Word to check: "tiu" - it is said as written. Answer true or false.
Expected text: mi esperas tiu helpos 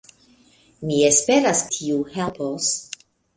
true